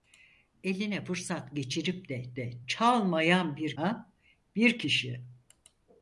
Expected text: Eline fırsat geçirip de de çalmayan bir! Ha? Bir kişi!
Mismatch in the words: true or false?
false